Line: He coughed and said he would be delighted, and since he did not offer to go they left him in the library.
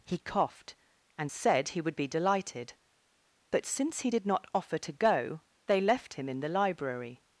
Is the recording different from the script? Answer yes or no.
yes